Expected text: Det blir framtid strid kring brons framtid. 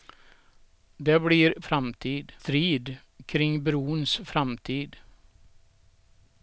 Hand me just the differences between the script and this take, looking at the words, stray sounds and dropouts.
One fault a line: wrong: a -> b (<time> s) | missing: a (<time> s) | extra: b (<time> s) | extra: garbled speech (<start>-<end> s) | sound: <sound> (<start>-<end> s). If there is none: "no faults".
no faults